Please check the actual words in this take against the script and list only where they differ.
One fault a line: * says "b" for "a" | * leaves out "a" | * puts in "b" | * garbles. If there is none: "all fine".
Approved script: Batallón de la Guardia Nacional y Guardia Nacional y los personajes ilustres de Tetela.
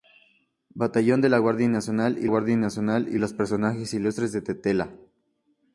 all fine